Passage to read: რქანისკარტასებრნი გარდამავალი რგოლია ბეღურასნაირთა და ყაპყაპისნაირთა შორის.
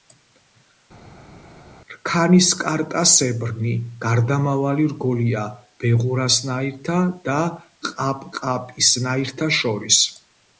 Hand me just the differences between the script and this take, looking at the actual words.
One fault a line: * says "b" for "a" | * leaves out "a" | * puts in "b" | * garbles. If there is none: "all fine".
all fine